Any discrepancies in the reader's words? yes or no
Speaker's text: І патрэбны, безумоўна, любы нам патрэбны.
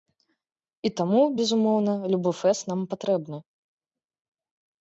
yes